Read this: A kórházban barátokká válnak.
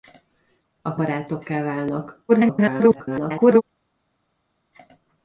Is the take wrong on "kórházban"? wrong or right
wrong